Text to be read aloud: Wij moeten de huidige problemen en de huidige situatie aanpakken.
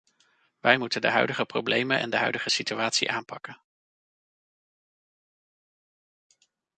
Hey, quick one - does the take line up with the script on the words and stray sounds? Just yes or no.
yes